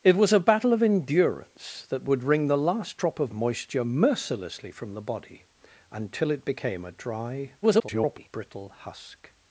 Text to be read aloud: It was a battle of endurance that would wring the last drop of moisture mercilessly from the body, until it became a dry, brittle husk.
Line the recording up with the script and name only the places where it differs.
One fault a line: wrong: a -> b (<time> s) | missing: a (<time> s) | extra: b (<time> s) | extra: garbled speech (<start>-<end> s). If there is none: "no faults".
extra: garbled speech (7.6-8.3 s)